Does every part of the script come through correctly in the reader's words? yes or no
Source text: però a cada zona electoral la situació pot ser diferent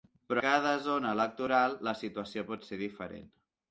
no